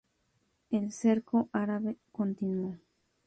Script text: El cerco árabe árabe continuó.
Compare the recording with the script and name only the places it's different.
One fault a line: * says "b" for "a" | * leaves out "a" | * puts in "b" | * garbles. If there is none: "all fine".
* leaves out "árabe"